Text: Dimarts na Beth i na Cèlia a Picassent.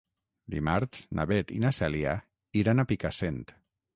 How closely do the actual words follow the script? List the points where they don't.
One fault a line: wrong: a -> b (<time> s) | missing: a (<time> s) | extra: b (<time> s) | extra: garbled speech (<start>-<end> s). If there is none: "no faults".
extra: iran (2.6 s)